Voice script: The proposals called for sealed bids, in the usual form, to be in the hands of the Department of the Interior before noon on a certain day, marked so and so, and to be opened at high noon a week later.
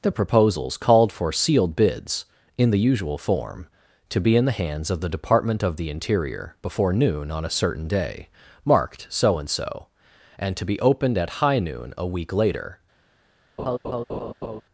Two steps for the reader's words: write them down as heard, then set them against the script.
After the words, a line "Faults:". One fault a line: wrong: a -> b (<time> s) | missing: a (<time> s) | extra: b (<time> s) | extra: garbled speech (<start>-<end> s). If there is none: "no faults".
The proposals called for sealed bids, in the usual form, to be in the hands of the Department of the Interior before noon on a certain day, marked so and so, and to be opened at high noon a week later.
Faults:
no faults